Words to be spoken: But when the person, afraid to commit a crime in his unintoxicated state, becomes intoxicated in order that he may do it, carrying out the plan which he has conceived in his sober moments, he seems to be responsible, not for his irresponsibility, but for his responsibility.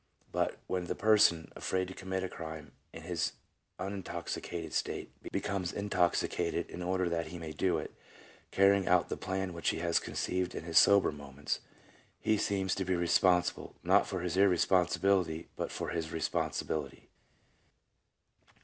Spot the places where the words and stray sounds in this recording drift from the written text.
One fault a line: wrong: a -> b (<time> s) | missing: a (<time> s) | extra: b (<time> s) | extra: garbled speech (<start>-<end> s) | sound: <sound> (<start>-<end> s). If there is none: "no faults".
no faults